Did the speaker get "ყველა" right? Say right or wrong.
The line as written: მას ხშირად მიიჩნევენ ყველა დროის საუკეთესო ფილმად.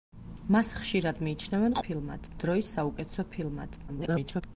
wrong